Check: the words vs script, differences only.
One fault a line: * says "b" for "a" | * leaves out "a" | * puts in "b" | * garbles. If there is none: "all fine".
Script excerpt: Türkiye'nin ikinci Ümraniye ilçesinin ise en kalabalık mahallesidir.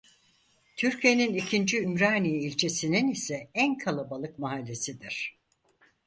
all fine